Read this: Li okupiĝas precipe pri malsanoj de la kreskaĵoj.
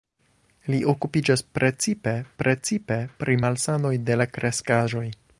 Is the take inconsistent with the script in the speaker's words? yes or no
yes